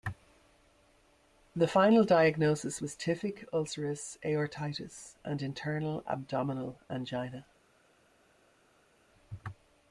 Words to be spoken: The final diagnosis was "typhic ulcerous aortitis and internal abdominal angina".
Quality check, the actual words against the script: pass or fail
pass